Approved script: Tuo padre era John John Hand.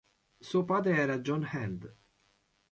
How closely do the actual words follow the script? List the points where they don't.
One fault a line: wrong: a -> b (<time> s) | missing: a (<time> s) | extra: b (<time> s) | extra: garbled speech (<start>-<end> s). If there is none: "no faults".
wrong: Tuo -> Suo (0.4 s)
missing: John (1.4 s)